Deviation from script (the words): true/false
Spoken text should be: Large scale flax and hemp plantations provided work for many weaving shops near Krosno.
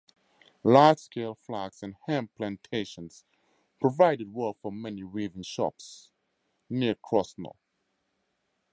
false